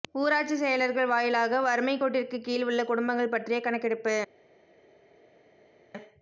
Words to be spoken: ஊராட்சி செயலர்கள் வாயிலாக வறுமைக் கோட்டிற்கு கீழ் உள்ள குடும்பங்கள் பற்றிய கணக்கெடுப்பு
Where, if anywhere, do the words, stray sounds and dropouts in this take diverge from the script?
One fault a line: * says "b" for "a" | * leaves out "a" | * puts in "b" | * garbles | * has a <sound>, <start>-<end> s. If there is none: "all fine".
all fine